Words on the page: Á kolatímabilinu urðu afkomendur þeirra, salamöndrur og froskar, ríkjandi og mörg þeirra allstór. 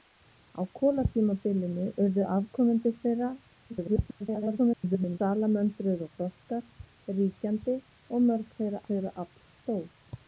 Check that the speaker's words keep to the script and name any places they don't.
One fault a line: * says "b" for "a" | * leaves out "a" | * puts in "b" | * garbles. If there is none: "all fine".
* garbles
* puts in "þeirra"